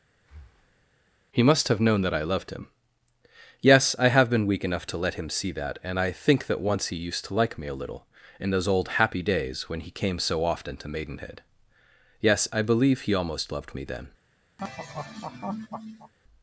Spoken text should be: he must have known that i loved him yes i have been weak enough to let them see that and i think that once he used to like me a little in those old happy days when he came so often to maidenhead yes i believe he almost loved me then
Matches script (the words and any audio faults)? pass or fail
fail